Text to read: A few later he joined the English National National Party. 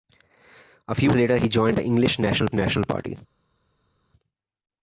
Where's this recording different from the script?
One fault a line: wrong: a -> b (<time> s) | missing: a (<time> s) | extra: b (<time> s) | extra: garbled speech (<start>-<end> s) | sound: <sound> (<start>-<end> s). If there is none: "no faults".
no faults